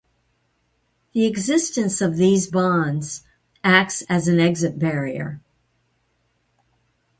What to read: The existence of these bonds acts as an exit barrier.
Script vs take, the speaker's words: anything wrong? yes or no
no